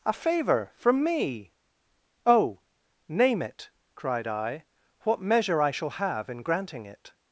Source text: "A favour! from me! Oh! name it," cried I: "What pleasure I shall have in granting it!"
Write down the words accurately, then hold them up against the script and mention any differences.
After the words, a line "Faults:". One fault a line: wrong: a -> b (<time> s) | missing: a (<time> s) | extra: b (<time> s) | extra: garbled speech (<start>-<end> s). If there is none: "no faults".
"A favour! from me! Oh! name it," cried I: "What measure I shall have in granting it!"
Faults:
wrong: pleasure -> measure (5.2 s)